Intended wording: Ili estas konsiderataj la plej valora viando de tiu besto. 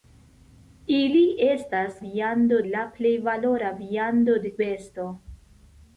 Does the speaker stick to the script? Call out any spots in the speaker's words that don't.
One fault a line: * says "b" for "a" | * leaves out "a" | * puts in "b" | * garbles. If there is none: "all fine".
* says "viando" for "konsiderataj"
* leaves out "tiu"